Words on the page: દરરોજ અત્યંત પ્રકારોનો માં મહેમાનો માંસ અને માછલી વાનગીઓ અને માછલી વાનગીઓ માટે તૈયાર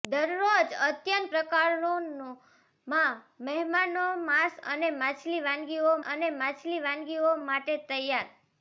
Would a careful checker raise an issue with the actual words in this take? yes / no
no